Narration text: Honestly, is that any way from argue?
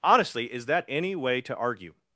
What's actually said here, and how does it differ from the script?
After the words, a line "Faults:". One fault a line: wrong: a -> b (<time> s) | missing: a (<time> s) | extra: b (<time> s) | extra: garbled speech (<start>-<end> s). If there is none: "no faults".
Honestly, is that any way to argue?
Faults:
wrong: from -> to (1.4 s)